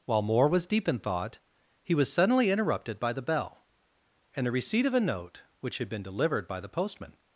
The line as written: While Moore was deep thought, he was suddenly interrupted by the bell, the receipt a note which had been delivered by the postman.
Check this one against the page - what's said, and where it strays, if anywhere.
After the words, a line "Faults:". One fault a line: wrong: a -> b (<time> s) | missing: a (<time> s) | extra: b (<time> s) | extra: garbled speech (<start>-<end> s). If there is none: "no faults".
While Moore was deep in thought, he was suddenly interrupted by the bell, and the receipt of a note which had been delivered by the postman.
Faults:
extra: in (0.9 s)
extra: and (4.3 s)
extra: of (4.8 s)